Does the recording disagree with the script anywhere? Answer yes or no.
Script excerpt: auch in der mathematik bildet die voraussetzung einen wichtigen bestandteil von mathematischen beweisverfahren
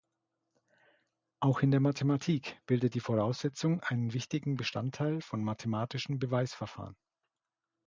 no